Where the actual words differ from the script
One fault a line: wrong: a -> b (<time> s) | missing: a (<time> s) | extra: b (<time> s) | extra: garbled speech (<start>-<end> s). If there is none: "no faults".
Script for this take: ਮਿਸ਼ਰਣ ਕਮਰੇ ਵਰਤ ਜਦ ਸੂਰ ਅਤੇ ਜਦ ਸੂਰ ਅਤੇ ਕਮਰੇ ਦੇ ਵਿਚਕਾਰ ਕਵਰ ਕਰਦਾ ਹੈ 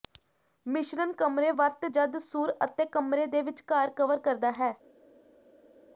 missing: ਜਦ ਸੂਰ ਅਤੇ (2.8 s)